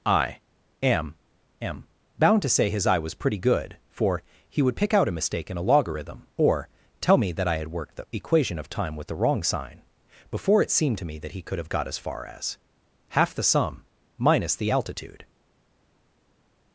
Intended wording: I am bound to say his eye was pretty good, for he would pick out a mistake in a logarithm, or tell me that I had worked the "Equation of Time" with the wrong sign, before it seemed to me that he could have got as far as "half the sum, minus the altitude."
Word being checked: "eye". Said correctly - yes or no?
yes